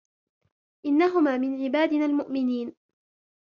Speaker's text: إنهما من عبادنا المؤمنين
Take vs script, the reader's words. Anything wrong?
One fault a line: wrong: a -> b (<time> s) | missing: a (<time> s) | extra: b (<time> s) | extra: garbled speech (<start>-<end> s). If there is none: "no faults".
no faults